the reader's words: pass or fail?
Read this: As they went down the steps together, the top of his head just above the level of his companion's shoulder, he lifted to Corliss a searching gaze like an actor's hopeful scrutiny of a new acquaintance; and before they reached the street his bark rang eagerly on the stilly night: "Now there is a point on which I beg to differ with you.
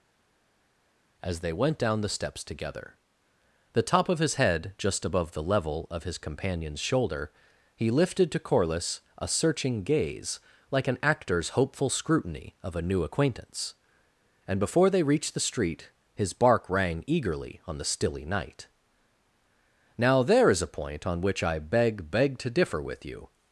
fail